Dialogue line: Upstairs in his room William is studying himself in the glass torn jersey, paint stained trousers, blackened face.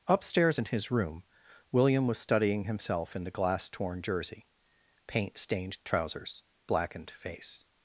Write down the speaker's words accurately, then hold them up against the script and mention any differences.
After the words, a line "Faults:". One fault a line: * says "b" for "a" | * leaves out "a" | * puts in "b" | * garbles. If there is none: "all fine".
Upstairs in his room William was studying himself in the glass torn jersey, paint stained trousers, blackened face.
Faults:
* says "was" for "is"